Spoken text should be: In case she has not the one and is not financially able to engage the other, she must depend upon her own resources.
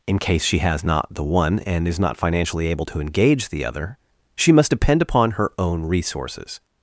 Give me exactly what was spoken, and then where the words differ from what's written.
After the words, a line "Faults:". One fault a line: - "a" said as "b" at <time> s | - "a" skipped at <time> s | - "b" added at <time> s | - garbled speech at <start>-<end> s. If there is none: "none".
In case she has not the one and is not financially able to engage the other, she must depend upon her own resources.
Faults:
none